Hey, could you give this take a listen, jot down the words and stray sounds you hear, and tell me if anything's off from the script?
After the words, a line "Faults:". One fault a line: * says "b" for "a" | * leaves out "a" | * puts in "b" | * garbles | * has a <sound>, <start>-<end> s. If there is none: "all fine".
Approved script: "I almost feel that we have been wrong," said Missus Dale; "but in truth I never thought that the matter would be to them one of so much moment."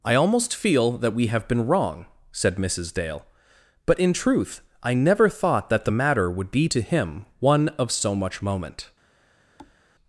"I almost feel that we have been wrong," said Missus Dale; "but in truth I never thought that the matter would be to him one of so much moment."
Faults:
* says "him" for "them"
* has a thud, 9.6-9.8 s